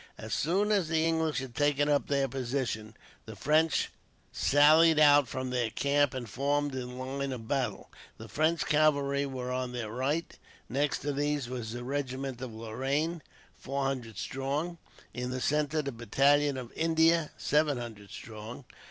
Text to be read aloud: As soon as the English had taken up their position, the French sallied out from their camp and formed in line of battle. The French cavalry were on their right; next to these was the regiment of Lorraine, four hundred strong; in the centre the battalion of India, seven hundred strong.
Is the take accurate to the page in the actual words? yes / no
yes